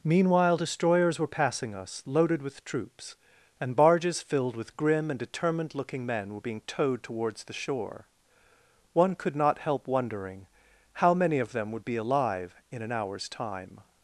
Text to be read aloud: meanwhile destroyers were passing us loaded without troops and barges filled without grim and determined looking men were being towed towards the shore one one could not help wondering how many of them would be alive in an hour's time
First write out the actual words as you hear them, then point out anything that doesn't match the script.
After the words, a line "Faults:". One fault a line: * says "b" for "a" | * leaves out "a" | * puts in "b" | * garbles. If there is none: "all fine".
meanwhile destroyers were passing us loaded with troops and barges filled with grim and determined looking men were being towed towards the shore one could not help wondering how many of them would be alive in an hour's time
Faults:
* says "with" for "without"
* says "with" for "without"
* leaves out "one"